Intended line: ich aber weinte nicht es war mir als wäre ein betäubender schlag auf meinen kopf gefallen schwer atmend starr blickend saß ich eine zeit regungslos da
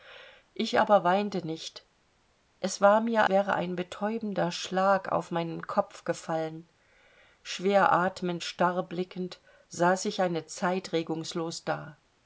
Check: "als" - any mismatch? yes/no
yes